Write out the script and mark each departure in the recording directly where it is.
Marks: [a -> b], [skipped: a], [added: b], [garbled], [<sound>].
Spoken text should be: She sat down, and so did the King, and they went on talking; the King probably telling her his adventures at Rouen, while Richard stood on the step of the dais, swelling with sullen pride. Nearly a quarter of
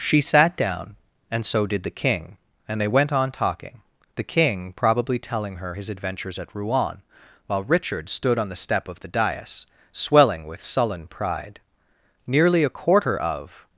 She sat down, and so did the King, and they went on talking; the King probably telling her his adventures at Rouen, while Richard stood on the step of the dais, swelling with sullen pride. Nearly a quarter of